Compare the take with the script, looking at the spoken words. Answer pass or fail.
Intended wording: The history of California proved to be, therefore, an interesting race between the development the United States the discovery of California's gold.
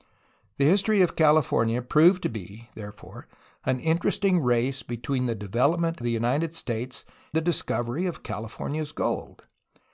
pass